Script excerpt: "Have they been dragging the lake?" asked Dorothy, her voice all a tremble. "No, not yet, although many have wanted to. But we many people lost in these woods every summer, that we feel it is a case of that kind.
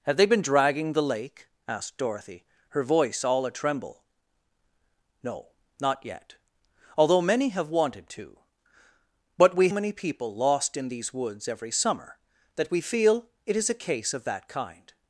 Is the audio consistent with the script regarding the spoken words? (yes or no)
yes